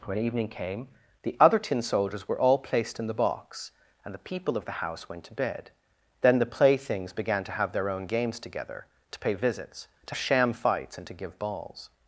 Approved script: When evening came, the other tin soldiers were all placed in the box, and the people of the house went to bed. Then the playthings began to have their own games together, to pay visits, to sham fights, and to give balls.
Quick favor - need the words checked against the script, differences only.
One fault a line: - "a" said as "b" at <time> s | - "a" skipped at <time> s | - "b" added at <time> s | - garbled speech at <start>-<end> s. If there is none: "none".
none